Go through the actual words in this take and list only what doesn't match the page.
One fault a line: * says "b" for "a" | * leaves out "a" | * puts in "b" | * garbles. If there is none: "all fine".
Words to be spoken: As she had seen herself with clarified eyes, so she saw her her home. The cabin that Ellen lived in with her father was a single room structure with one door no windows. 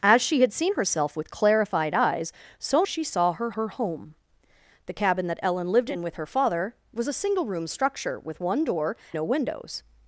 all fine